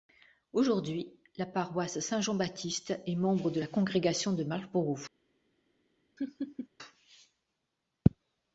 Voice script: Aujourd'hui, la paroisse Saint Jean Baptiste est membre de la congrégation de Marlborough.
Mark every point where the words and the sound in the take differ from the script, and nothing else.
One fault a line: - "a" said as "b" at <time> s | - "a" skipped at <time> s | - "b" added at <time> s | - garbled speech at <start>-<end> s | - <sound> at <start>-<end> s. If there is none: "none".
- laugh at 6.2-6.7 s